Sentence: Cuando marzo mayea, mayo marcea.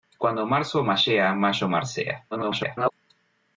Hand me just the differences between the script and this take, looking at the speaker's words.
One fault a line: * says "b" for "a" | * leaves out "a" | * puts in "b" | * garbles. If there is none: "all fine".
* garbles